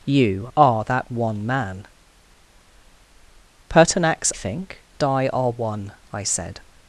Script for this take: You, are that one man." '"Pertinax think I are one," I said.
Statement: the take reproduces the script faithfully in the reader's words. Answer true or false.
true